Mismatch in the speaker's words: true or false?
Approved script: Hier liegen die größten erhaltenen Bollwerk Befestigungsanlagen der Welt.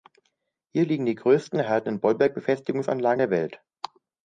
false